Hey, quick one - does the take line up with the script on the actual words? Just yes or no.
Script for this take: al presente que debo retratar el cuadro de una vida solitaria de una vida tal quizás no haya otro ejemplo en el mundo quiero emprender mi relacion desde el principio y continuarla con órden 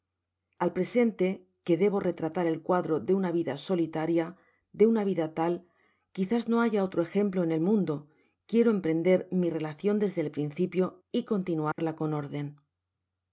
yes